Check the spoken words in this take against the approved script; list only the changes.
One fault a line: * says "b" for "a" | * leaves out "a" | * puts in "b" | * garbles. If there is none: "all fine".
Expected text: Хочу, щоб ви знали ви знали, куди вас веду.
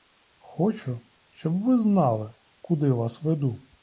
* leaves out "ви знали"